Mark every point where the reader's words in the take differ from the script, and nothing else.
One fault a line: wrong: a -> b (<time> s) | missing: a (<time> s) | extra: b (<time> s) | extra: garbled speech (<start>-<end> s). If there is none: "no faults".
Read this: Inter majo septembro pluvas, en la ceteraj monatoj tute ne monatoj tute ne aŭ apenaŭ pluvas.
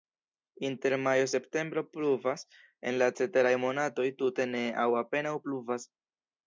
missing: monatoj tute ne (4.7 s)